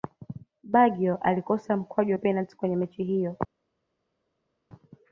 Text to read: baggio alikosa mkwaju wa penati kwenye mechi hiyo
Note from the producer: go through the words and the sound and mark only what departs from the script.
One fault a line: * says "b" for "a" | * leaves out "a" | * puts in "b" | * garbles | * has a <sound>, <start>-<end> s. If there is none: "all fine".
all fine